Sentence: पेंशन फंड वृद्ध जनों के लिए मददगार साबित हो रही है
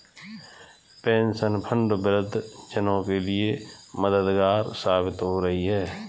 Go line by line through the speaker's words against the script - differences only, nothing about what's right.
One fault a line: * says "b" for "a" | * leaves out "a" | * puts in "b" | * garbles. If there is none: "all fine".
all fine